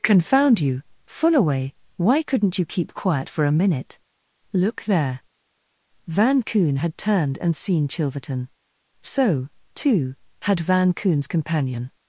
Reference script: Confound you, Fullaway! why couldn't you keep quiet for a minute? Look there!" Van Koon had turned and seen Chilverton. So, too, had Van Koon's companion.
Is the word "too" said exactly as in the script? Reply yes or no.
yes